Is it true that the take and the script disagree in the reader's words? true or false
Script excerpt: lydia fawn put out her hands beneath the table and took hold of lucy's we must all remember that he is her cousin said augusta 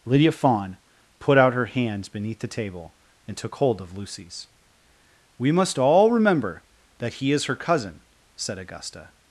false